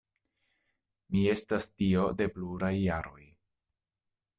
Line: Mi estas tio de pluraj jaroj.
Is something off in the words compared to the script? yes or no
no